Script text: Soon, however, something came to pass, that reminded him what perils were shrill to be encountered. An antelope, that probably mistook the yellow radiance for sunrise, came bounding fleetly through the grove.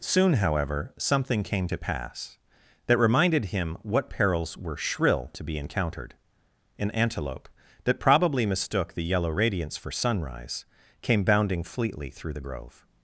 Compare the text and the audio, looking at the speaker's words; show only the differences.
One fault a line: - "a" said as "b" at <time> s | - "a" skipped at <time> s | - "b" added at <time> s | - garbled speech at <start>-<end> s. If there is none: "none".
none